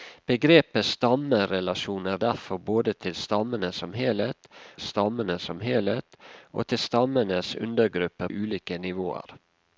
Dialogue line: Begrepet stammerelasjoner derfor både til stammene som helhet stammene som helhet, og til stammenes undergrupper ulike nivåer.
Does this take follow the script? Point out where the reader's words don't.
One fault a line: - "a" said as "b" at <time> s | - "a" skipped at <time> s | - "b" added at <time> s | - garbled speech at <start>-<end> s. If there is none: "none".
none